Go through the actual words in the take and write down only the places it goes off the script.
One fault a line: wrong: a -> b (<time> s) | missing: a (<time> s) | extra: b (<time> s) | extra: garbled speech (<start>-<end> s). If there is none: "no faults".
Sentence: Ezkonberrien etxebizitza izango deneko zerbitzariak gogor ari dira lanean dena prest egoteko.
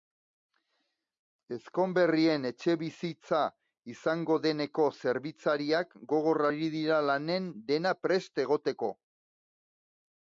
no faults